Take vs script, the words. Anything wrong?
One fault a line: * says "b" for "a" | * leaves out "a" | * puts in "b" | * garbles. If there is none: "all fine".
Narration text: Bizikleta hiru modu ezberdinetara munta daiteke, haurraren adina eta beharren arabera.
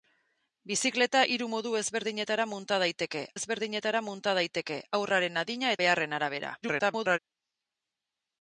* puts in "ezberdinetara munta daiteke"
* leaves out "eta"
* garbles